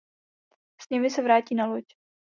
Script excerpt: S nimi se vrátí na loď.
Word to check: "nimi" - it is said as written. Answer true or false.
true